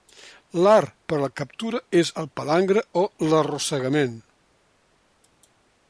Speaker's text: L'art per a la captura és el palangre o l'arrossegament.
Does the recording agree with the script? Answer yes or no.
yes